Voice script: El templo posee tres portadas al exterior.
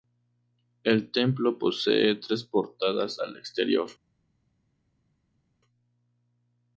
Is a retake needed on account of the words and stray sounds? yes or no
no